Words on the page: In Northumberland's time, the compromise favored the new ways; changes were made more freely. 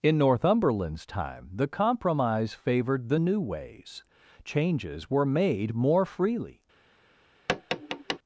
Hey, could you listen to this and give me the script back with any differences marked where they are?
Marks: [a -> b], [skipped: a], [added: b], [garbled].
In Northumberland's time, the compromise favored the new ways; changes were made more freely.